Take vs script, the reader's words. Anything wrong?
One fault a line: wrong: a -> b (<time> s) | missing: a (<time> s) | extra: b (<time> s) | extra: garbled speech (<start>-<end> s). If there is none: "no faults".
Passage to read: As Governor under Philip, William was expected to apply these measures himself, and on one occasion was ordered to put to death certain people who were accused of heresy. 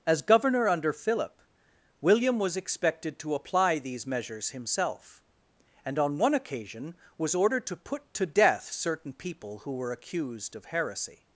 no faults